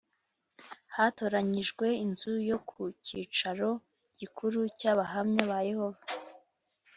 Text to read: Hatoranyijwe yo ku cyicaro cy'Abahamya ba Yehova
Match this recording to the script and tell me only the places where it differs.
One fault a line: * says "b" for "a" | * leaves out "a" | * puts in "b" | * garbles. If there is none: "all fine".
* puts in "inzu"
* puts in "gikuru"